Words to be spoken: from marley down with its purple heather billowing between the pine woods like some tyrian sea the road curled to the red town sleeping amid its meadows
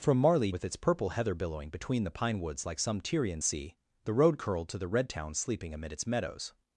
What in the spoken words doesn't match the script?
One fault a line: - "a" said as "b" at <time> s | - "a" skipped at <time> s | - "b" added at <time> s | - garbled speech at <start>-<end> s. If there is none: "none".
- "down" skipped at 0.5 s